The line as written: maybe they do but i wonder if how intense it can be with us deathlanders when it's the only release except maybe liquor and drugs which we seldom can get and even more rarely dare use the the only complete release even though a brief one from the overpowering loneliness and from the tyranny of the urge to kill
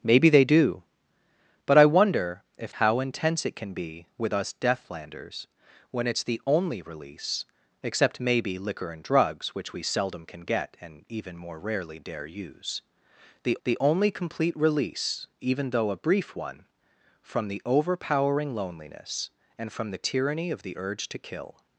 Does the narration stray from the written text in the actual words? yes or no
no